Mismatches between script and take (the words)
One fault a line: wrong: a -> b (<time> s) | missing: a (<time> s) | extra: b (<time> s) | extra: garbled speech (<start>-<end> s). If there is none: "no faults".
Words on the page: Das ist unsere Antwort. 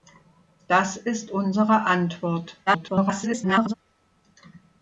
extra: garbled speech (2.7-3.7 s)